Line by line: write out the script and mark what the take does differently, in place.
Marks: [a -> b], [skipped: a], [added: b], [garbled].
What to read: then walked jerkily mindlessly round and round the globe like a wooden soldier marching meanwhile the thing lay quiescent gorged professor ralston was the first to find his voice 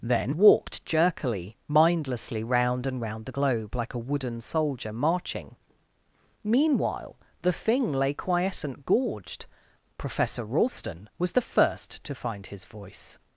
then walked jerkily mindlessly round and round the globe like a wooden soldier marching meanwhile the thing lay quiescent gorged professor ralston was the first to find his voice